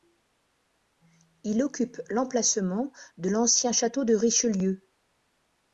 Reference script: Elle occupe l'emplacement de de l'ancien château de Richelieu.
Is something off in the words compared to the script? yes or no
yes